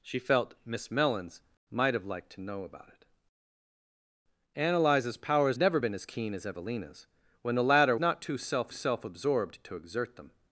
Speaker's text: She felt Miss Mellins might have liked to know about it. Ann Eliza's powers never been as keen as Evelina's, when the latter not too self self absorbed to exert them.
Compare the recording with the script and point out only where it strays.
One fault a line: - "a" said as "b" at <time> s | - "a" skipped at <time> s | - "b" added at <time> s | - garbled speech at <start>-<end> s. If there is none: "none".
none